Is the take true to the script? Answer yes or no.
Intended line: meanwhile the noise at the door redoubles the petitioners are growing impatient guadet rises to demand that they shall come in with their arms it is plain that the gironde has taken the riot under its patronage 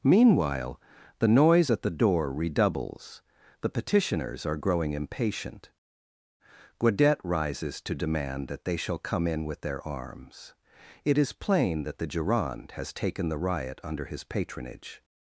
no